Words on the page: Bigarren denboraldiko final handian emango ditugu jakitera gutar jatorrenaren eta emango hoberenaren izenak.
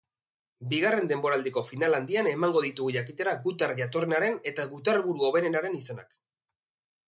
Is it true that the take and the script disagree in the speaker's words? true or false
true